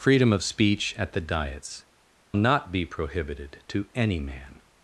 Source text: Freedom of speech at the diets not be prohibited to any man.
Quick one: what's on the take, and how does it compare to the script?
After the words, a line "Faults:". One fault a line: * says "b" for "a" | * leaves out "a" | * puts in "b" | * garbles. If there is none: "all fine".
Freedom of speech at the diets not be prohibited to any man.
Faults:
all fine